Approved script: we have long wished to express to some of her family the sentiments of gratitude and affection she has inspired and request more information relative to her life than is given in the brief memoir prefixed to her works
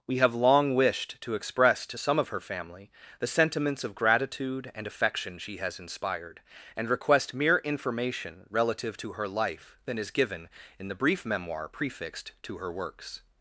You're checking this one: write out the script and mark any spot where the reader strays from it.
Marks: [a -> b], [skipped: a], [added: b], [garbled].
we have long wished to express to some of her family the sentiments of gratitude and affection she has inspired and request [more -> mere] information relative to her life than is given in the brief memoir prefixed to her works